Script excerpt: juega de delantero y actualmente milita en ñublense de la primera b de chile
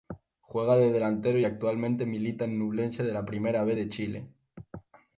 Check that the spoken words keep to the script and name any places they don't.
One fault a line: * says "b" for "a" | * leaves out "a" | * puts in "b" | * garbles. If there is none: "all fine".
all fine